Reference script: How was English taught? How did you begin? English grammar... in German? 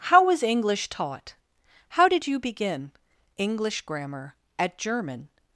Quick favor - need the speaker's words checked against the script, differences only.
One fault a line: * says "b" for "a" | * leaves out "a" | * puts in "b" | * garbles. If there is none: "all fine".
* says "at" for "in"